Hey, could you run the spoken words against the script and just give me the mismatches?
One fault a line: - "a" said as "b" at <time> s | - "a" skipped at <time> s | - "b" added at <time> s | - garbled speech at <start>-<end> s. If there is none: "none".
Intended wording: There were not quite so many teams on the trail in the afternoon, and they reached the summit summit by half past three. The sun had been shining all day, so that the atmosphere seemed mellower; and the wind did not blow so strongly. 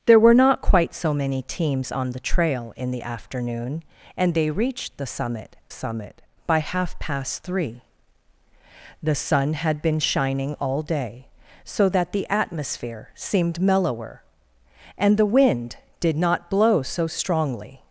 none